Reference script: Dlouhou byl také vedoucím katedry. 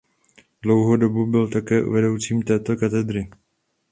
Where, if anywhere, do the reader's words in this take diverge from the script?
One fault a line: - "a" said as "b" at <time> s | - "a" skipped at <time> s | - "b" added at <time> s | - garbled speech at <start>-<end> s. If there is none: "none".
- "dobu" added at 0.9 s
- "této" added at 2.4 s